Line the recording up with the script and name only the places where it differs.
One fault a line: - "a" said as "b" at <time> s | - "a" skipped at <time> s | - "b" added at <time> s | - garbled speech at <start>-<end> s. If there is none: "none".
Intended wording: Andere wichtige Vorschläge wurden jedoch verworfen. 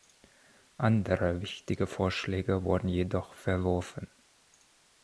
none